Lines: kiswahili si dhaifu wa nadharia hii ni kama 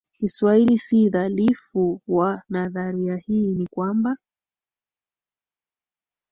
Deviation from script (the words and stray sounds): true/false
true